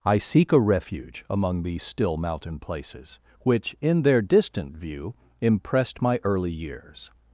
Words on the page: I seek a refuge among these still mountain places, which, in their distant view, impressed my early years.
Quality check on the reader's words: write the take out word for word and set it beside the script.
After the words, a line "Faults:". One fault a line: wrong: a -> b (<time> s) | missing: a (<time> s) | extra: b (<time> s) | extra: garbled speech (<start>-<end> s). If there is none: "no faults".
I seek a refuge among these still mountain places, which, in their distant view, impressed my early years.
Faults:
no faults